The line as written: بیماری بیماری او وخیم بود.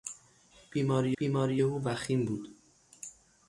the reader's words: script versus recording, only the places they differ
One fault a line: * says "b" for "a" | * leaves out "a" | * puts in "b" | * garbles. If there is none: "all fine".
all fine